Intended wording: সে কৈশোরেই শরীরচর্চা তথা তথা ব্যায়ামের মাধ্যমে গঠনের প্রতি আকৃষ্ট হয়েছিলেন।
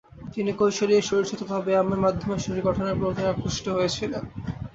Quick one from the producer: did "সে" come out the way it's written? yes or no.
no